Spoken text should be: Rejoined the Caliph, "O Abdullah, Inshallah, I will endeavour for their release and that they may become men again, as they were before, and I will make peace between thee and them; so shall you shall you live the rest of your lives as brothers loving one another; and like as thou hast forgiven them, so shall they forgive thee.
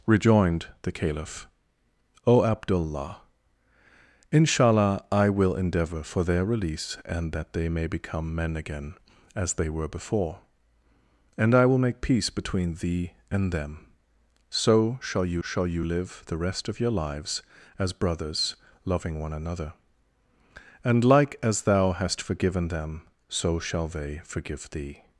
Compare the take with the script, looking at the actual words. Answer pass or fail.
pass